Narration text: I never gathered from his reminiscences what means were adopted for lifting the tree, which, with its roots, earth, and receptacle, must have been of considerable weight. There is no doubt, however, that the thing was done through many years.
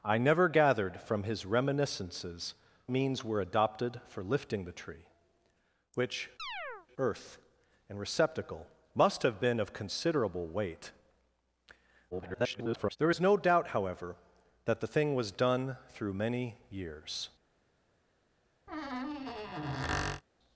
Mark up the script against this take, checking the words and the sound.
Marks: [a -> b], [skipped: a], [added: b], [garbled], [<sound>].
I never gathered from his reminiscences [skipped: what] means were adopted for lifting the tree, which, [skipped: with its roots,] [chirp] earth, and receptacle, must have been of considerable weight. [garbled] There is no doubt, however, that the thing was done through many years. [squeak]